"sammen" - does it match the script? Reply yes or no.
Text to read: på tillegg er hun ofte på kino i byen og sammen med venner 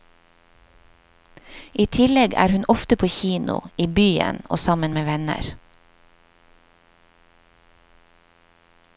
yes